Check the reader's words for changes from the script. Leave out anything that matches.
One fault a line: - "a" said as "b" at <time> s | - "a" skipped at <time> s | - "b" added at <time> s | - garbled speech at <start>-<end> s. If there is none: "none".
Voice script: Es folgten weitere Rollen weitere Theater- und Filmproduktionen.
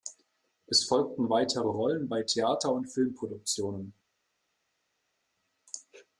- "weitere" said as "bei" at 2.1 s